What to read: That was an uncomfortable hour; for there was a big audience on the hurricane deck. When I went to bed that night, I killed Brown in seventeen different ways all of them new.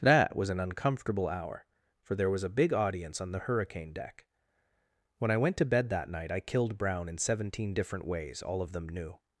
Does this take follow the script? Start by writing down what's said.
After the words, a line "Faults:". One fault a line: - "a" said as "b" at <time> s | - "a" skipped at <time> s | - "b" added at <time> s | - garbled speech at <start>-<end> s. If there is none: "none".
That was an uncomfortable hour; for there was a big audience on the hurricane deck. When I went to bed that night, I killed Brown in seventeen different ways all of them new.
Faults:
none